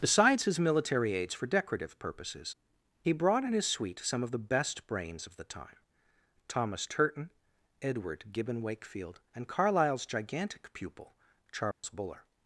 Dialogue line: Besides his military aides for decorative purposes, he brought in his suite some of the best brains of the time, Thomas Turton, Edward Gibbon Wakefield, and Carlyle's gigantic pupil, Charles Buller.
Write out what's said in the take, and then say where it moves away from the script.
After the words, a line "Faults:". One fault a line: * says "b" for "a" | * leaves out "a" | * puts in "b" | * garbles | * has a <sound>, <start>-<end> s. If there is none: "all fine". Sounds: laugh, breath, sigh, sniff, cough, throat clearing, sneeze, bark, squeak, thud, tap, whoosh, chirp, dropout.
Besides his military aides for decorative purposes, he brought in his suite some of the best brains of the time, Thomas Turton, Edward Gibbon Wakefield, and Carlyle's gigantic pupil, Charles Buller.
Faults:
* has a dropout, 11.7-11.8 s